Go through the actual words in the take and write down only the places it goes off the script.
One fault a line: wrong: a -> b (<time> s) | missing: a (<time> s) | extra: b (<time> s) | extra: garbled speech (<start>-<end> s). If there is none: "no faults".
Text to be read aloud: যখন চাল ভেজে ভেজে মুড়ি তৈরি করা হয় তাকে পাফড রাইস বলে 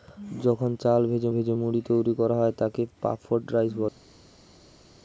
no faults